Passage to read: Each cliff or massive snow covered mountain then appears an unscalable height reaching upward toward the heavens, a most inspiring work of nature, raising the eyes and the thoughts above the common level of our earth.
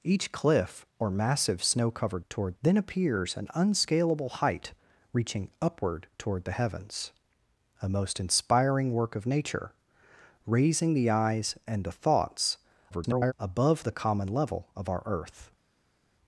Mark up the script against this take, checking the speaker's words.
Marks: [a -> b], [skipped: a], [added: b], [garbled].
Each cliff or massive snow covered [mountain -> toward] then appears an unscalable height reaching upward toward the heavens, a most inspiring work of nature, raising the eyes and the thoughts [garbled] above the common level of our earth.